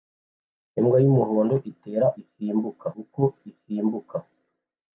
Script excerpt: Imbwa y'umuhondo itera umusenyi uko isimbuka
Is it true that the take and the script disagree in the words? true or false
true